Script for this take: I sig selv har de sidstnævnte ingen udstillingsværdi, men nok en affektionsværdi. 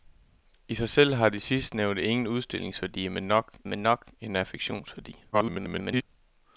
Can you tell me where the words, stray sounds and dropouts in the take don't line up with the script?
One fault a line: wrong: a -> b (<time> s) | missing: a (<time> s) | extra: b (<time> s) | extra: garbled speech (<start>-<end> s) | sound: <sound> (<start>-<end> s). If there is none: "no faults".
extra: men nok (3.6 s)
extra: garbled speech (5.3-6.0 s)